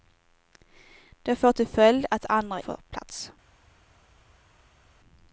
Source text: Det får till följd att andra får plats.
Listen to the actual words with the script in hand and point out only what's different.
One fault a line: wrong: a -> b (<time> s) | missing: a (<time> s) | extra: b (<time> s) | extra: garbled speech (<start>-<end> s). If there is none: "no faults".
no faults